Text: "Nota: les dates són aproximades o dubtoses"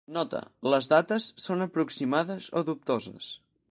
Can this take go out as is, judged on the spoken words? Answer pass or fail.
pass